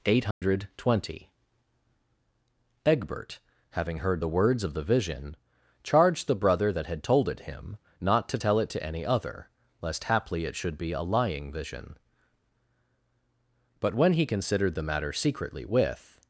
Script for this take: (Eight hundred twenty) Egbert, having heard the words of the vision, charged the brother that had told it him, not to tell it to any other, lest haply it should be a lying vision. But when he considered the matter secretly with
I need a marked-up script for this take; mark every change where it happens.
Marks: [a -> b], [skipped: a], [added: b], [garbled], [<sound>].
(Eight hundred [dropout] twenty) Egbert, having heard the words of the vision, charged the brother that had told it him, not to tell it to any other, lest haply it should be a lying vision. But when he considered the matter secretly with